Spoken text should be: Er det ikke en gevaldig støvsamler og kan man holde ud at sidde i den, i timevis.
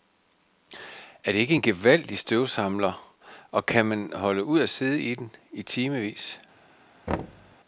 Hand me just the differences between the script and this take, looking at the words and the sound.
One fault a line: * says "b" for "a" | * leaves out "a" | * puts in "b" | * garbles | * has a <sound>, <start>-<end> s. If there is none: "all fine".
* has a thud, 7.1-7.6 s